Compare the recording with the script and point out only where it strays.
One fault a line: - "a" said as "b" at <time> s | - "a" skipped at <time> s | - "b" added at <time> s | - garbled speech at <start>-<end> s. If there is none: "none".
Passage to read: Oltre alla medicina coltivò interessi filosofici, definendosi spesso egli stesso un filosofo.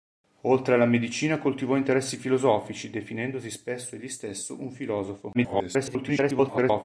- garbled speech at 5.3-6.8 s